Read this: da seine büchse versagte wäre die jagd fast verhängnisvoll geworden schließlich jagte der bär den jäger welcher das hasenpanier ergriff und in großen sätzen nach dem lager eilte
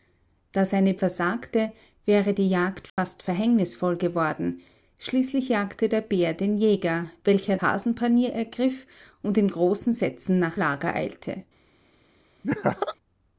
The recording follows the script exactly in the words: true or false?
false